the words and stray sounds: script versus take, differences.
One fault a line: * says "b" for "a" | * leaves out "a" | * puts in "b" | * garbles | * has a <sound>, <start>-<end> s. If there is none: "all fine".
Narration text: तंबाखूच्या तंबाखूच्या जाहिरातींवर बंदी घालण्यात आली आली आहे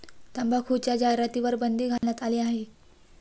* leaves out "तंबाखूच्या"
* has a dropout, 2.0-2.0 s
* leaves out "आली"